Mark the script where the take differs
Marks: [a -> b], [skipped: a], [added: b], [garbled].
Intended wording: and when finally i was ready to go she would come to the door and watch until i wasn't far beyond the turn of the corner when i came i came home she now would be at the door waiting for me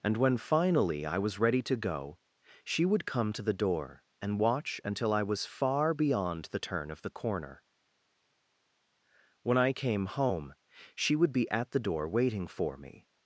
and when finally i was ready to go she would come to the door and watch until i [wasn't -> was] far beyond the turn of the corner when i came [skipped: i came] home she [skipped: now] would be at the door waiting for me